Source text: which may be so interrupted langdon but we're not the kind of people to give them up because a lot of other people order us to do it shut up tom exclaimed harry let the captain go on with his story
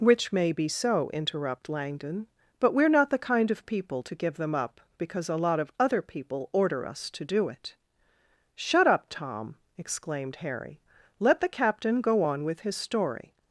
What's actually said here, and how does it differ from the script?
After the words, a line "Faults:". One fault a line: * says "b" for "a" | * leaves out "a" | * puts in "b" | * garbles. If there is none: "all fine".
which may be so interrupt langdon but we're not the kind of people to give them up because a lot of other people order us to do it shut up tom exclaimed harry let the captain go on with his story
Faults:
* says "interrupt" for "interrupted"